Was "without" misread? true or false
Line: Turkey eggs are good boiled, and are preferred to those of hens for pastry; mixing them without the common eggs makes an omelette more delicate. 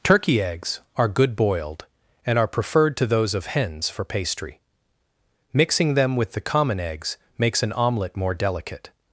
true